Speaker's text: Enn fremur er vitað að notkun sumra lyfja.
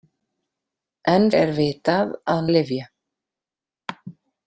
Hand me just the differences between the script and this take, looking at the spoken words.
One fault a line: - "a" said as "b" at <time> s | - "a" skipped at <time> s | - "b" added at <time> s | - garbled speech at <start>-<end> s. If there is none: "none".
- "fremur" skipped at 1.3 s
- "notkun sumra" skipped at 2.4 s